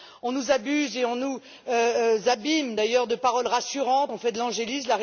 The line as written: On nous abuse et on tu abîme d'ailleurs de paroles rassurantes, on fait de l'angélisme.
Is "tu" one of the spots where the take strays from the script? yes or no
yes